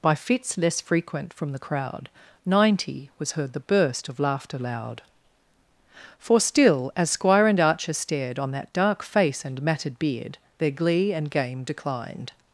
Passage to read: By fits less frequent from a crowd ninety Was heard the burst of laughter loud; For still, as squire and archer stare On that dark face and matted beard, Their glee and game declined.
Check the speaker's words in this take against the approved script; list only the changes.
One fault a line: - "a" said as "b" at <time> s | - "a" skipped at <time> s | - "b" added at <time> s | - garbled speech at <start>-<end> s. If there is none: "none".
- "a" said as "the" at 1.5 s
- "stare" said as "stared" at 7.9 s